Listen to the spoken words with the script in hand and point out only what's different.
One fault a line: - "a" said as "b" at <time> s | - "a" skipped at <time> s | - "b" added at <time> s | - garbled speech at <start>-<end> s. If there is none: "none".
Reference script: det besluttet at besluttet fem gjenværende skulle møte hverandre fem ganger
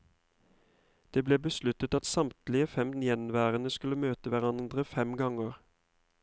- "ble" added at 1.3 s
- "besluttet" said as "samtlige" at 2.1 s